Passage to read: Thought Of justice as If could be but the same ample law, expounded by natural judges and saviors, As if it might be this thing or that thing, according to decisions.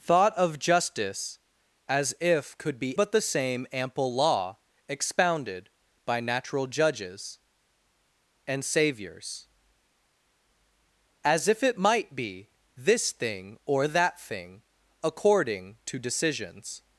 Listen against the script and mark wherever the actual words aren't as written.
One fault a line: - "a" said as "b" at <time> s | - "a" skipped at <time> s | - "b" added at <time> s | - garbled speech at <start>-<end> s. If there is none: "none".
none